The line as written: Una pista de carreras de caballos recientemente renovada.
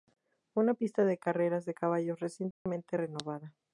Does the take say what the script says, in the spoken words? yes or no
yes